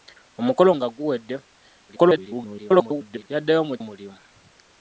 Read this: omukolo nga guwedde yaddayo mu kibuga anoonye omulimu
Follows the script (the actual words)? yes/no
no